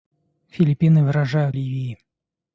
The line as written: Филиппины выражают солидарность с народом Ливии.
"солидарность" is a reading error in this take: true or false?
true